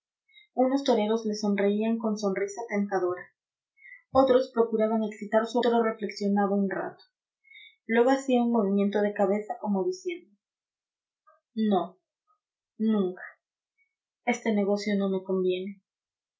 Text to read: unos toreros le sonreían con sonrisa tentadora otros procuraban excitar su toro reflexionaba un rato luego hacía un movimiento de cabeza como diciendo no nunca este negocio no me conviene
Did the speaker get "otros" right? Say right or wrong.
right